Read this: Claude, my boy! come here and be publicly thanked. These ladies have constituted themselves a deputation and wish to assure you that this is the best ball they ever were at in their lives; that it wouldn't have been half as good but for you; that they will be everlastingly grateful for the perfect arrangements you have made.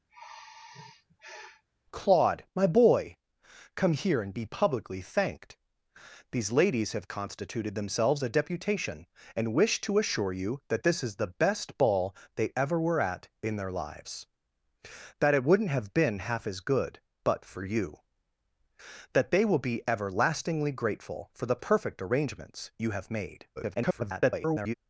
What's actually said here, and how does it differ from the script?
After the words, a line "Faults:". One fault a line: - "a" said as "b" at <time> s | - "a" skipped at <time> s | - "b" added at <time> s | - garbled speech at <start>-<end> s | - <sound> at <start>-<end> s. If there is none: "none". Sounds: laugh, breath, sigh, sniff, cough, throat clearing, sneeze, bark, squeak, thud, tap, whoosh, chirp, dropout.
Claude, my boy! come here and be publicly thanked. These ladies have constituted themselves a deputation and wish to assure you that this is the best ball they ever were at in their lives; that it wouldn't have been half as good but for you; that they will be everlastingly grateful for the perfect arrangements you have made. [garbled]
Faults:
- sigh at 0.1-1.6 s
- garbled speech at 23.6-24.7 s